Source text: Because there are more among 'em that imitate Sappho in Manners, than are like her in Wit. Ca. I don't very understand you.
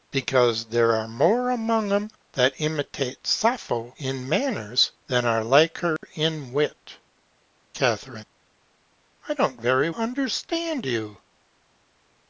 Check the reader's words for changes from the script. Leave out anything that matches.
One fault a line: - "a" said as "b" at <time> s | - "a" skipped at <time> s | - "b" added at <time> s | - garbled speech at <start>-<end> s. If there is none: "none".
none